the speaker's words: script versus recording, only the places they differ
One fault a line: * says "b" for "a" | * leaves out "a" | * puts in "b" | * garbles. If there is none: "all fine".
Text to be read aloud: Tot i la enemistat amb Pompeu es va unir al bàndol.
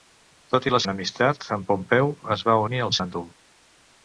all fine